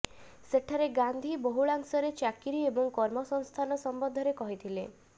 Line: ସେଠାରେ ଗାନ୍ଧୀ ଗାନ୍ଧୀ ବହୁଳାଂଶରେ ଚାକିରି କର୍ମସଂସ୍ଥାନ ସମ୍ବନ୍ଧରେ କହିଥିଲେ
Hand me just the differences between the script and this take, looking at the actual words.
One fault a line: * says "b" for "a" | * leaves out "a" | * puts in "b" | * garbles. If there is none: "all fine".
* leaves out "ଗାନ୍ଧୀ"
* puts in "ଏବଂ"